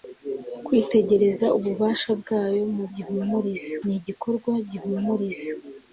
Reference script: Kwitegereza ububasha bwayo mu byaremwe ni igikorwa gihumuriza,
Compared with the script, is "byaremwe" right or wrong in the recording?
wrong